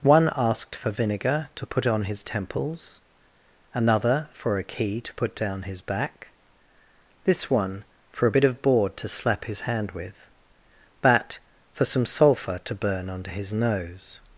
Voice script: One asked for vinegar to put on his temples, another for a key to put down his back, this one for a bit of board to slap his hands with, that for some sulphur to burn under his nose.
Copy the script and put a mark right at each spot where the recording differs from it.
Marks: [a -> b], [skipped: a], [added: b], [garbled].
One asked for vinegar to put on his temples, another for a key to put down his back, this one for a bit of board to slap his [hands -> hand] with, that for some sulphur to burn under his nose.